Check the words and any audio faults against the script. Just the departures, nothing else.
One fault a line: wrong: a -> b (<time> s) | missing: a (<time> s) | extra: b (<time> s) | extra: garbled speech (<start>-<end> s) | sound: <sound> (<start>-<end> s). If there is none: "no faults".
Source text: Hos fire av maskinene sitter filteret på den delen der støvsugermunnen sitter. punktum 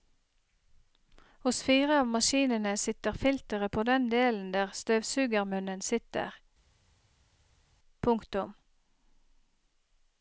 no faults